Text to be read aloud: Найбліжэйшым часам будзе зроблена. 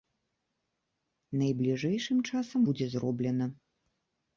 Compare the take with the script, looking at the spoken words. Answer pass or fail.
pass